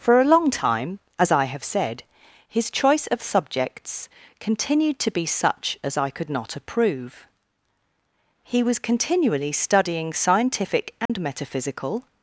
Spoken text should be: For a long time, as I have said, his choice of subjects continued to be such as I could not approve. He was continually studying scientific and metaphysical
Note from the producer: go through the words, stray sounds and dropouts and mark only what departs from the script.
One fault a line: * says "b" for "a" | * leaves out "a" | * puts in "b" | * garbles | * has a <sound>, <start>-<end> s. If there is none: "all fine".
* has a dropout, 11.1-11.1 s